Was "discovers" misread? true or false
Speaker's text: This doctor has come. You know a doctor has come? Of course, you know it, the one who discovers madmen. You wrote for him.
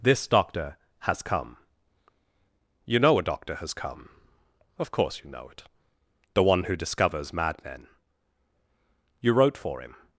false